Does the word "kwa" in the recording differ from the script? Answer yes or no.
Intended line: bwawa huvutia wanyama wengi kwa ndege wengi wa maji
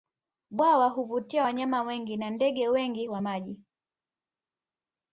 yes